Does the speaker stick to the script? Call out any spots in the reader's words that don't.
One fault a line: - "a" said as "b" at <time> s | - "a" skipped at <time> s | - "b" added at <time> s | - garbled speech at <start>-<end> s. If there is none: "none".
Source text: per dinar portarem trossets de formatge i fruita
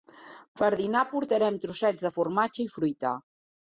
none